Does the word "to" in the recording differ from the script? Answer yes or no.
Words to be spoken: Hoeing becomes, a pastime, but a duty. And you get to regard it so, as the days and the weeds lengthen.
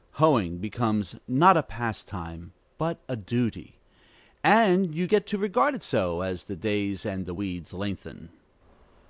no